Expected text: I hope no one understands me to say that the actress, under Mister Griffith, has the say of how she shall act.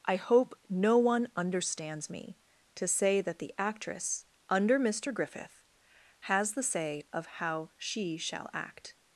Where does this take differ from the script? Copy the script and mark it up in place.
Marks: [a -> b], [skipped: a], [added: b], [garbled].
I hope no one understands me to say that the actress, under Mister Griffith, has the say of how she shall act.